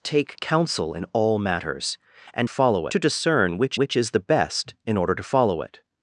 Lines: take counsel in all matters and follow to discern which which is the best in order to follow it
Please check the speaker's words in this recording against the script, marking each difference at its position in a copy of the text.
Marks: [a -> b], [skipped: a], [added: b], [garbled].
take counsel in all matters and follow to discern which which is the best in order to follow it